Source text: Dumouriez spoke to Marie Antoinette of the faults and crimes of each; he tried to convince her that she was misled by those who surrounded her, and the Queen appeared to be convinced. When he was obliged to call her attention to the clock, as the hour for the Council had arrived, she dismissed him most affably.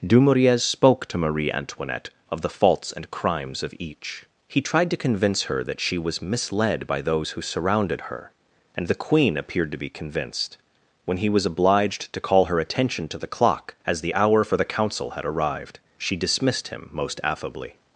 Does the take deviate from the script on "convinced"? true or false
false